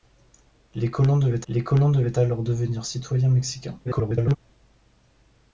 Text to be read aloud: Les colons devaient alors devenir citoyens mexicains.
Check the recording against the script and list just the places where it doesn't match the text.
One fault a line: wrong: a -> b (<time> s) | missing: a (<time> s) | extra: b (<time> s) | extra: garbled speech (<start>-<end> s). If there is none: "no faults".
extra: les colons devaient (1.5 s)
extra: garbled speech (3.8-4.4 s)